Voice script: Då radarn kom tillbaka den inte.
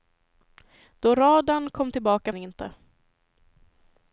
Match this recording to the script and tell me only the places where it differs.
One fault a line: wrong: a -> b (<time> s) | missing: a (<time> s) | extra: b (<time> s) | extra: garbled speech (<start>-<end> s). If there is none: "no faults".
no faults